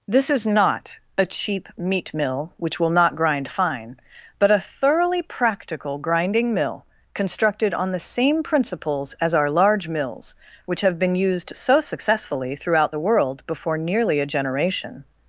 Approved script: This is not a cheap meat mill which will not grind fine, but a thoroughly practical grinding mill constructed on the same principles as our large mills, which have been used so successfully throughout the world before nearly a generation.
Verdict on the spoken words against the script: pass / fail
pass